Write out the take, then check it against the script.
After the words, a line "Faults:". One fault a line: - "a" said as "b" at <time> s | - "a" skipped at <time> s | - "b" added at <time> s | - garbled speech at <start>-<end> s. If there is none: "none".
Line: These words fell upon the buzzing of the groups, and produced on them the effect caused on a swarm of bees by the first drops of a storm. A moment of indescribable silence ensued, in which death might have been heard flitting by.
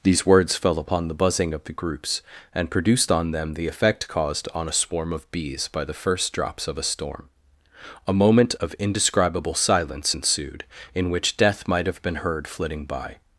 These words fell upon the buzzing of the groups, and produced on them the effect caused on a swarm of bees by the first drops of a storm. A moment of indescribable silence ensued, in which death might have been heard flitting by.
Faults:
none